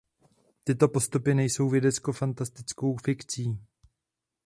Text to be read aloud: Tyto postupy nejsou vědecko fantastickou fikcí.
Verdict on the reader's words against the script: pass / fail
pass